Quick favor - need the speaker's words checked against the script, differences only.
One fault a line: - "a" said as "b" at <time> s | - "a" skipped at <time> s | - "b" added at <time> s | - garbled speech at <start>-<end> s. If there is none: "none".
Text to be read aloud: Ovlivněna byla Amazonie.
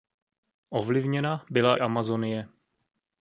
none